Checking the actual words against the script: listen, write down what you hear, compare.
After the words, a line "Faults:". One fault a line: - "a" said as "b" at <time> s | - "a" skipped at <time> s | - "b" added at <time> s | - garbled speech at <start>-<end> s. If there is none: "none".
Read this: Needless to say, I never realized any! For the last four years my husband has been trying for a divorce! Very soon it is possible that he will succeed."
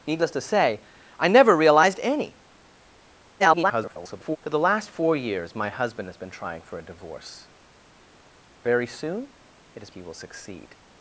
Needless to say, I never realized any! [garbled] For the last four years my husband has been trying for a divorce! Very soon it is he will succeed."
Faults:
- garbled speech at 3.4-4.4 s
- "possible that" skipped at 9.9 s